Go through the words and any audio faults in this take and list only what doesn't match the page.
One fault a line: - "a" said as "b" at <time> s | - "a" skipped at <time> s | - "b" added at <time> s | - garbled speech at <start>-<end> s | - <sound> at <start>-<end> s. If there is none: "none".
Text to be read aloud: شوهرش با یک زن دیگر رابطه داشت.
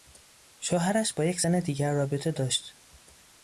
none